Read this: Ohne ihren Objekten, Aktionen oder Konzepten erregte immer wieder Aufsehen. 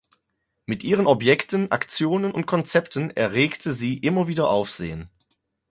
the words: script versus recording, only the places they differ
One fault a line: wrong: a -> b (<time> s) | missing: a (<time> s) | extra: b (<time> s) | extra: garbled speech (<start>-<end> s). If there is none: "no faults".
wrong: Ohne -> Mit (0.7 s)
wrong: oder -> und (2.3 s)
extra: sie (3.7 s)